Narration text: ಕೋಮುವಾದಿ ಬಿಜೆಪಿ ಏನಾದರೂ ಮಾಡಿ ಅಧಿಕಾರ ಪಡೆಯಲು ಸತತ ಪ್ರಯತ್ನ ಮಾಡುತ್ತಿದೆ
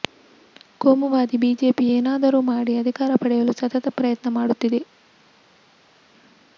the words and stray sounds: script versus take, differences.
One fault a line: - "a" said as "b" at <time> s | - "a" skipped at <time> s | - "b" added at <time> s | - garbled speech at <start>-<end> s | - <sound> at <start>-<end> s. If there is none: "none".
none